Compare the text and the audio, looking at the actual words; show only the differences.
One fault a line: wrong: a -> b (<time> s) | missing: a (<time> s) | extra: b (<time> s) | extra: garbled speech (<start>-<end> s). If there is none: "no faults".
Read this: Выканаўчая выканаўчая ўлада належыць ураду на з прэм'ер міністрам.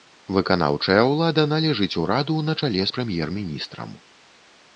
missing: выканаўчая (1.0 s)
extra: чале (2.6 s)